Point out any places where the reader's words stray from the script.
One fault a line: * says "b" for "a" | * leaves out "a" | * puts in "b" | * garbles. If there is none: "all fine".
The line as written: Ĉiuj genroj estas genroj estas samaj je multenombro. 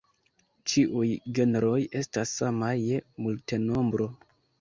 * leaves out "genroj estas"